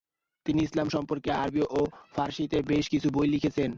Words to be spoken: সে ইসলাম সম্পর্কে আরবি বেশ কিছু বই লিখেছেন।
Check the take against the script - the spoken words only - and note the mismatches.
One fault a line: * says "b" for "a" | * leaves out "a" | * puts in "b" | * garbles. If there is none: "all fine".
* says "তিনি" for "সে"
* puts in "ও ফারসিতে"